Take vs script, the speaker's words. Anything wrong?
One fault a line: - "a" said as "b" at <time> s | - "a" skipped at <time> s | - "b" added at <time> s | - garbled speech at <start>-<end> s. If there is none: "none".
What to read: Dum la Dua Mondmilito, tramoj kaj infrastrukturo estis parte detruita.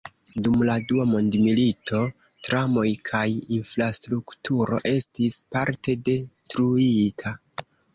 none